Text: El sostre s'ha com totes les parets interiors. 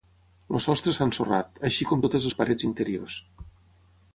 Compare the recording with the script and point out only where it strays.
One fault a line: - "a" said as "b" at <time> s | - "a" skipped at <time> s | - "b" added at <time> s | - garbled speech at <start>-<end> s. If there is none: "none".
- "ensorrat així" added at 1.1 s